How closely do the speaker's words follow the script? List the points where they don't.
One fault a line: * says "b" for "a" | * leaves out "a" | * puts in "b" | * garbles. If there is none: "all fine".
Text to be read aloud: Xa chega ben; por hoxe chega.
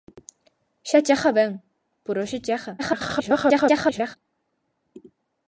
* garbles